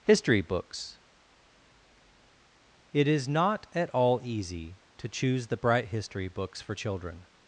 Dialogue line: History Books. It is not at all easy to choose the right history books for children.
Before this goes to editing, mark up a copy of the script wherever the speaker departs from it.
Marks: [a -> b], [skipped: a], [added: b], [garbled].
History Books. It is not at all easy to choose the [right -> bright] history books for children.